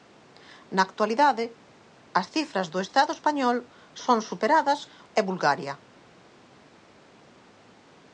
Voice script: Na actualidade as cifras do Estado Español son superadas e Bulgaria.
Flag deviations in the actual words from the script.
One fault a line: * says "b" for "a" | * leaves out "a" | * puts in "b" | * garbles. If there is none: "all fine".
all fine